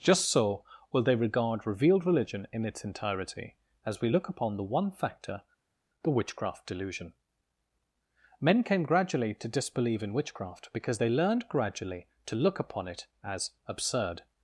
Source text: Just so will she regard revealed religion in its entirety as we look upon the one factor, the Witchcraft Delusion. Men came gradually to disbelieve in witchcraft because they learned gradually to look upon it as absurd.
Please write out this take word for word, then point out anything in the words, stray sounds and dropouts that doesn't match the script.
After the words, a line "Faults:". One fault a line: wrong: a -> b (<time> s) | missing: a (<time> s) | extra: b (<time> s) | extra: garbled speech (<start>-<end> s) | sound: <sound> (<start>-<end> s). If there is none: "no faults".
Just so will they regard revealed religion in its entirety as we look upon the one factor, the Witchcraft Delusion. Men came gradually to disbelieve in witchcraft because they learned gradually to look upon it as absurd.
Faults:
wrong: she -> they (1.0 s)